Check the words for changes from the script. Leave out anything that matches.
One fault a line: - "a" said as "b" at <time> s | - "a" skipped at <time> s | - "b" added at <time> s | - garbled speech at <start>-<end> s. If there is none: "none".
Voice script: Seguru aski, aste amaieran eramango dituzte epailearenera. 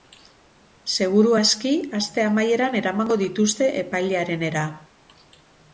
none